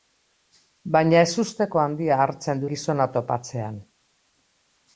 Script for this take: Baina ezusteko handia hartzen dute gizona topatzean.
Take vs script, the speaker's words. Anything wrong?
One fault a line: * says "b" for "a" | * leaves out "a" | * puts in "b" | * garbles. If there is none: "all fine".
* leaves out "dute"